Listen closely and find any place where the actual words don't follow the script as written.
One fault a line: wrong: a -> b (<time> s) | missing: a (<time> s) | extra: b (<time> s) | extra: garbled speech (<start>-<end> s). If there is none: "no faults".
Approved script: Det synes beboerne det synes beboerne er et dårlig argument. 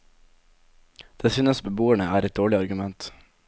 missing: det synes beboerne (2.0 s)